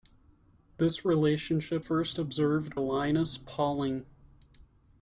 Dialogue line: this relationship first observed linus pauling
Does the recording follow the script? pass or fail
pass